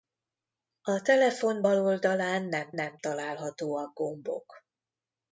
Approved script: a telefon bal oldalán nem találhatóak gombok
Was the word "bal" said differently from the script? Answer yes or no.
no